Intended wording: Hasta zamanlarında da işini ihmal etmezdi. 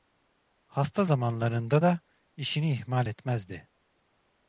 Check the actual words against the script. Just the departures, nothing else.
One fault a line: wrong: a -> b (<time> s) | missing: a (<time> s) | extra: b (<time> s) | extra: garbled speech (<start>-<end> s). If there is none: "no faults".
no faults